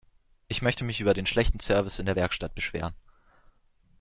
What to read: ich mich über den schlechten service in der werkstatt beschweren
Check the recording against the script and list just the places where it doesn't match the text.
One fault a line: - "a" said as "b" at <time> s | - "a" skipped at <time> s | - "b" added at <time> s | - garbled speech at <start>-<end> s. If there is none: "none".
- "möchte" added at 0.6 s